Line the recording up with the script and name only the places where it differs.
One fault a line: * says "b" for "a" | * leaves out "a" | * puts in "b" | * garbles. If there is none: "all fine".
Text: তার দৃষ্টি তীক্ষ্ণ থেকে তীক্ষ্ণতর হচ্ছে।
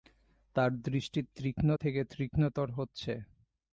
all fine